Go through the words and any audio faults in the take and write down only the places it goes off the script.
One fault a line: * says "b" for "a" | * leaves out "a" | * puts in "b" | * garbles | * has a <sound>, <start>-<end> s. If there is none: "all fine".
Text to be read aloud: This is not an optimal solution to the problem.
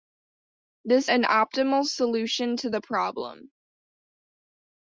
* leaves out "is not"